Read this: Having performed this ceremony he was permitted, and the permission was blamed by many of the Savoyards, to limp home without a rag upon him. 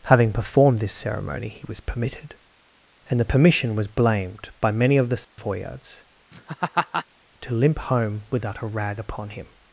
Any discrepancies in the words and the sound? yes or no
yes